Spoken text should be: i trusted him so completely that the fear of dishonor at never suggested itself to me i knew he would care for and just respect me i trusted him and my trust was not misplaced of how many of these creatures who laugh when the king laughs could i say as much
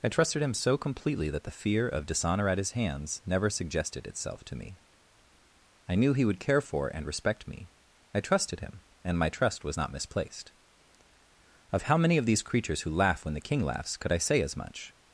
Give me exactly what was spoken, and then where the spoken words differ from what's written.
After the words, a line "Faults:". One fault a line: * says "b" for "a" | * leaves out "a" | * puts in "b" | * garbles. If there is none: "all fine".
i trusted him so completely that the fear of dishonor at his hands never suggested itself to me i knew he would care for and respect me i trusted him and my trust was not misplaced of how many of these creatures who laugh when the king laughs could i say as much
Faults:
* puts in "his hands"
* leaves out "just"